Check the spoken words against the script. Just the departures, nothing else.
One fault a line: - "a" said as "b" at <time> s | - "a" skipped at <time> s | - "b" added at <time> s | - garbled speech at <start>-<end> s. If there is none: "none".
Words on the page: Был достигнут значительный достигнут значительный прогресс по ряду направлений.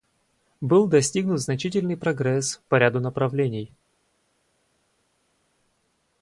- "достигнут значительный" skipped at 2.0 s